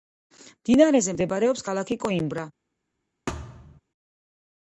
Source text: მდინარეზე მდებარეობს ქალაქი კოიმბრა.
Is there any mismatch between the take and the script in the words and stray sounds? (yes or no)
yes